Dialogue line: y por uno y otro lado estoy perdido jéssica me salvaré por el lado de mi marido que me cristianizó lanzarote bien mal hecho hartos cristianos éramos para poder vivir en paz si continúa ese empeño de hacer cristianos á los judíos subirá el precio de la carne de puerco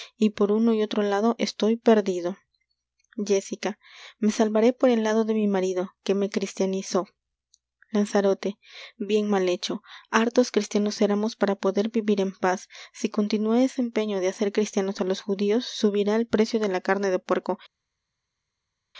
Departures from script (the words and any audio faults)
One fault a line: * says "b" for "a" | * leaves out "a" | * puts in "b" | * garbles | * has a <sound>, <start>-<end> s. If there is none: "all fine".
all fine